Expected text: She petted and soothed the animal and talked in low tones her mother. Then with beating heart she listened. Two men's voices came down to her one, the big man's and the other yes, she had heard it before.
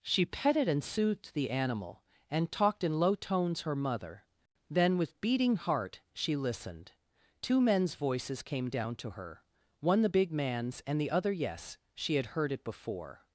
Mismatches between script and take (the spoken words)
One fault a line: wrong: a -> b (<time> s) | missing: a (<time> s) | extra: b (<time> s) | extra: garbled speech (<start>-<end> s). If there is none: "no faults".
no faults